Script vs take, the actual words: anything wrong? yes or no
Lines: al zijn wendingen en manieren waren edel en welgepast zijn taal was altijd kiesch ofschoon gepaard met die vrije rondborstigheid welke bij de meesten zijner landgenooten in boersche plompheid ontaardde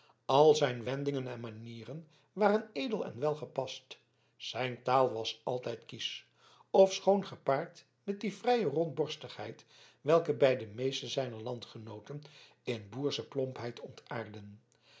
no